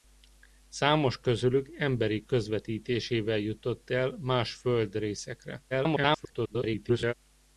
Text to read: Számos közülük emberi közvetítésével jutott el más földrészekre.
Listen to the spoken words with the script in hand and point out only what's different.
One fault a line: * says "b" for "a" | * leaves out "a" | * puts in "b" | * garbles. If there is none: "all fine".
* garbles